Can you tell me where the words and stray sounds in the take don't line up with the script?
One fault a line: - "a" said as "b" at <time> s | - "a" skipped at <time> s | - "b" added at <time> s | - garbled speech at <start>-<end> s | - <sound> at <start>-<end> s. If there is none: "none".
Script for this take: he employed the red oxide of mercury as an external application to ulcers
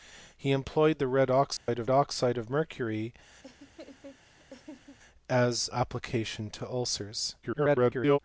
- dropout at 1.6-1.7 s
- "oxide of" added at 1.9 s
- laugh at 3.4-5.0 s
- "an external" skipped at 5.7 s
- garbled speech at 7.4-8.2 s